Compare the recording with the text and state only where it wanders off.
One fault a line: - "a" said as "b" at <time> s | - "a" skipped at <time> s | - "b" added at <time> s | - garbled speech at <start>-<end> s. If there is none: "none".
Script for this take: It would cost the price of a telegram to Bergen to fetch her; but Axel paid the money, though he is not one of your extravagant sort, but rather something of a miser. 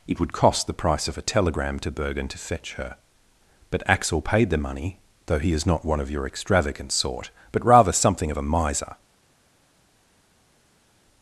none